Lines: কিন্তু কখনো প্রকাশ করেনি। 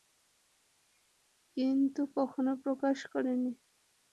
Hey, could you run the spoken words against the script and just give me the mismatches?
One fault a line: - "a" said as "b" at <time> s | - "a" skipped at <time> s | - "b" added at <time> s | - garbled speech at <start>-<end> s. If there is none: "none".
none